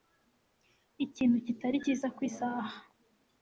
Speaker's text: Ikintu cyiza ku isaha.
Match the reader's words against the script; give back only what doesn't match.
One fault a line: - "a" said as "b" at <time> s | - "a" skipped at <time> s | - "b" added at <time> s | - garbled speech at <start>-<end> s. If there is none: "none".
- "kitari" added at 1.4 s